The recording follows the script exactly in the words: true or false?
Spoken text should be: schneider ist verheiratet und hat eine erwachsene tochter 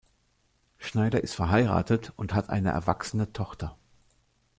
true